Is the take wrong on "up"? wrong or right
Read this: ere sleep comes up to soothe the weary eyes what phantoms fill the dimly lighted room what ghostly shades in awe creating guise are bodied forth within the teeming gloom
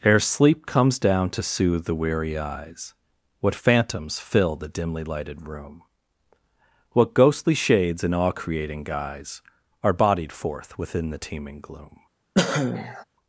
wrong